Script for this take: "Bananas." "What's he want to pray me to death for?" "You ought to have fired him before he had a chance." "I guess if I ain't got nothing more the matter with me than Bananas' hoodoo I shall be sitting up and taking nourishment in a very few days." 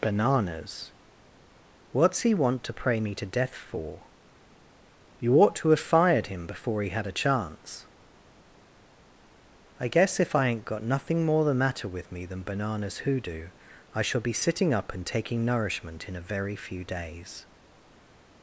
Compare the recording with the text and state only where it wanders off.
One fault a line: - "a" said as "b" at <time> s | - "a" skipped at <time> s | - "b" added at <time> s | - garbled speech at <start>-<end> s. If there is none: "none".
none